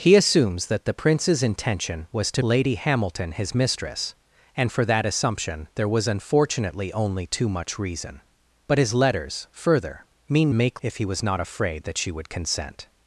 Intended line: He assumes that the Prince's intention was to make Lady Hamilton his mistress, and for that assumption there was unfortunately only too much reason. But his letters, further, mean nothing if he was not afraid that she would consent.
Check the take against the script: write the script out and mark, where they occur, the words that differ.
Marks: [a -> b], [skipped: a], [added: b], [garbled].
He assumes that the Prince's intention was to [skipped: make] Lady Hamilton his mistress, and for that assumption there was unfortunately only too much reason. But his letters, further, mean [nothing -> make] if he was not afraid that she would consent.